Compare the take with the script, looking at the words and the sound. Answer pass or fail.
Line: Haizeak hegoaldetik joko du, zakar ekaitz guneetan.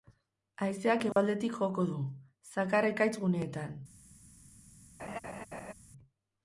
fail